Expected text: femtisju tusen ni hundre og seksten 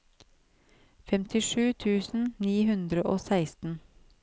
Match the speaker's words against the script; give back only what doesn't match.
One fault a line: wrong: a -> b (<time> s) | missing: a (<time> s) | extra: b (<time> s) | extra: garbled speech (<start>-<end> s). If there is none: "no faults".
no faults